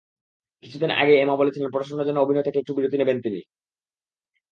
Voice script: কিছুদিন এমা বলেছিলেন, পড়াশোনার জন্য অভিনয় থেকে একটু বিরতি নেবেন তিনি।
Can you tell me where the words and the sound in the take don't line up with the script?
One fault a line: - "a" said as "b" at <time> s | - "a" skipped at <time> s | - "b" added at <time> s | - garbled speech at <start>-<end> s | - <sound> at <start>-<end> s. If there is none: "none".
- "আগেই" added at 0.9 s